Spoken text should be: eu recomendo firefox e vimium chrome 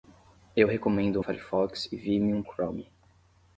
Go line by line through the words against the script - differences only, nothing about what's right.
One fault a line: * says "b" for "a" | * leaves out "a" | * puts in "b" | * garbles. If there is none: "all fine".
all fine